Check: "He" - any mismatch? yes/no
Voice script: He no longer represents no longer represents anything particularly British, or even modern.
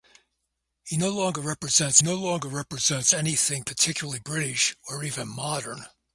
no